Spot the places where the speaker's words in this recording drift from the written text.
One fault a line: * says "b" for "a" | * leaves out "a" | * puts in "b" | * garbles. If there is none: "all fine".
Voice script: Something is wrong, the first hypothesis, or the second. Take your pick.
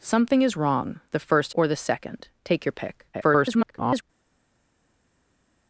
* leaves out "hypothesis"
* garbles